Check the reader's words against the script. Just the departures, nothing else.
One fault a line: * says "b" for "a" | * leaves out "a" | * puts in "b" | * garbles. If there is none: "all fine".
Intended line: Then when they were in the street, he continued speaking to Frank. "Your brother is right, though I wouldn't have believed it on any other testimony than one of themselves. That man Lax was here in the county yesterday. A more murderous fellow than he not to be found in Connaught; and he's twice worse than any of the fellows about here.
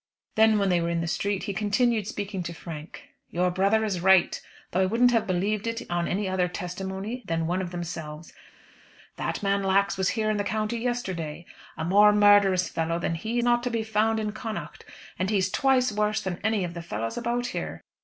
all fine